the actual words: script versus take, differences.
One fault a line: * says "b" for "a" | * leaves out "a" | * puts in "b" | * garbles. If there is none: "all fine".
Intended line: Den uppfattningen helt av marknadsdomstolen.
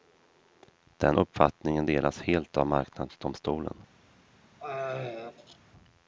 * puts in "delas"